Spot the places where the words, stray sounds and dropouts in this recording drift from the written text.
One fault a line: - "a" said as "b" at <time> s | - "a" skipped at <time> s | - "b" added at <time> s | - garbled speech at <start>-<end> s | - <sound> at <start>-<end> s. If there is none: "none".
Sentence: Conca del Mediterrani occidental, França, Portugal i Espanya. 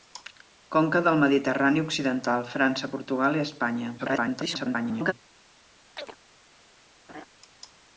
- garbled speech at 4.0-5.1 s
- chirp at 6.0-6.2 s
- laugh at 7.1-7.2 s